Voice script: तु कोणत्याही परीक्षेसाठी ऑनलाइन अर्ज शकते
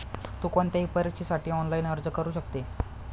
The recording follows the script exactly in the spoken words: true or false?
false